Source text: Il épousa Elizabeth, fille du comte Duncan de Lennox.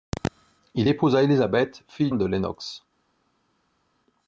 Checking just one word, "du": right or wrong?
wrong